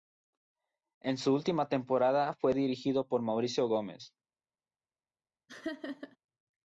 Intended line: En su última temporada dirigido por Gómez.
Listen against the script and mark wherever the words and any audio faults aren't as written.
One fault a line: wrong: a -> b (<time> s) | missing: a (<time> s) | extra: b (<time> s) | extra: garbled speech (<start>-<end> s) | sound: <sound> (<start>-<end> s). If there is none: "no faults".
extra: fue (2.3 s)
extra: Mauricio (3.2 s)
sound: laugh (5.5-6.2 s)